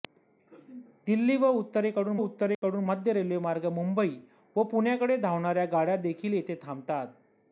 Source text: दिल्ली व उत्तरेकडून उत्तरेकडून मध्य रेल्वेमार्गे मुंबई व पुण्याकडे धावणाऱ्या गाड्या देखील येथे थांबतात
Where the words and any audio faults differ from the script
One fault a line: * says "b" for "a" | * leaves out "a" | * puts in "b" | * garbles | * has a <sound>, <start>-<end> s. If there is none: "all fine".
* has a dropout, 2.5-2.6 s